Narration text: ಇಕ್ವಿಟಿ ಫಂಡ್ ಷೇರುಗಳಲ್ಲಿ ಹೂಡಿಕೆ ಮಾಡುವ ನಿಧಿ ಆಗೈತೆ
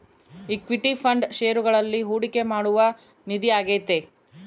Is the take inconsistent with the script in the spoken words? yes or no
no